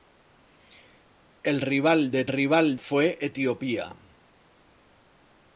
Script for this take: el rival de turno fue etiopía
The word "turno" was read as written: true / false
false